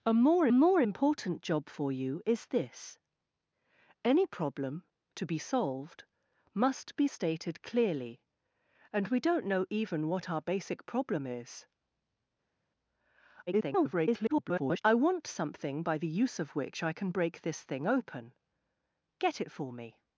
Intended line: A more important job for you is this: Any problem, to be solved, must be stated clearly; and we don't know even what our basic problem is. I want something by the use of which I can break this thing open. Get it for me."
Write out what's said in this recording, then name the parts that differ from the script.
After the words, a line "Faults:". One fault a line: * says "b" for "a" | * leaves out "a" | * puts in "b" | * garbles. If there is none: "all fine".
A more more important job for you is this: Any problem, to be solved, must be stated clearly; and we don't know even what our basic problem is. [garbled] I want something by the use of which I can break this thing open. Get it for me."
Faults:
* puts in "more"
* garbles